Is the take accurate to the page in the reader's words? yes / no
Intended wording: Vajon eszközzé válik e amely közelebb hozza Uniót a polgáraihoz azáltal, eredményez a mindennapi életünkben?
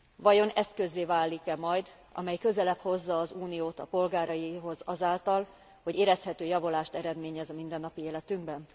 no